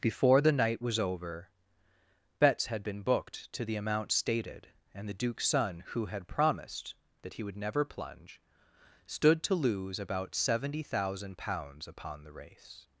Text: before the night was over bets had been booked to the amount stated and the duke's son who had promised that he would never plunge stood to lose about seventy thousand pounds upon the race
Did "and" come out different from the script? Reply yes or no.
no